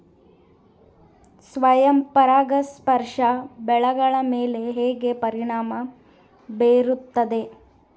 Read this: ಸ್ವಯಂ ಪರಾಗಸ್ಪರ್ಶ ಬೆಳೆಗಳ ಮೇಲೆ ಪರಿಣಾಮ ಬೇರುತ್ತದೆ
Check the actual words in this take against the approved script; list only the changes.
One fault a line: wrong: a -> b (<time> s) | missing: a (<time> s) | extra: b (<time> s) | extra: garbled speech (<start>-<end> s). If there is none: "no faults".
extra: ಹೇಗೆ (4.7 s)